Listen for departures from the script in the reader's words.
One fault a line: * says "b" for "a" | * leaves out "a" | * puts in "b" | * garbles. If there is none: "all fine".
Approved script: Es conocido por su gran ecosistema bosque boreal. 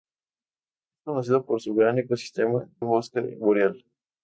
all fine